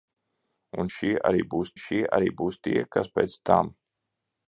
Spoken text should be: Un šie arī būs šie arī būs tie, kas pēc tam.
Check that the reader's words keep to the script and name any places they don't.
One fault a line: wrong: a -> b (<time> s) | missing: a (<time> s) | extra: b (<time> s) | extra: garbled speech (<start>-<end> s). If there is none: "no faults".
no faults